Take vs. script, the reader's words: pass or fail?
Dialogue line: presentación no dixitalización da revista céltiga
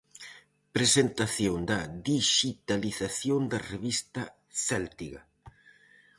fail